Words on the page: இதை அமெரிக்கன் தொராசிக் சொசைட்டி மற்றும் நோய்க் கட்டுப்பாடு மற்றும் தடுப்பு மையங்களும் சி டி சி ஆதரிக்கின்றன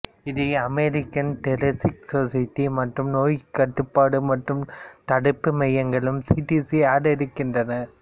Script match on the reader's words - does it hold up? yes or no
yes